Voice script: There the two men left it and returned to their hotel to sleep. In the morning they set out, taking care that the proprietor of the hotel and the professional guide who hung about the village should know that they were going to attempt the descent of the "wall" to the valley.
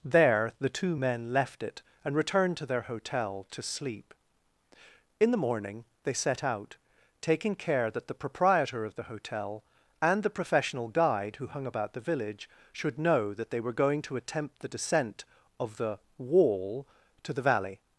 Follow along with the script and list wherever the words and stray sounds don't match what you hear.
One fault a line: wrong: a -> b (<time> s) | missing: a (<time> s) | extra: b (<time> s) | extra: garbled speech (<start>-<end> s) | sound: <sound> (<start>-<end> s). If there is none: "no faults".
no faults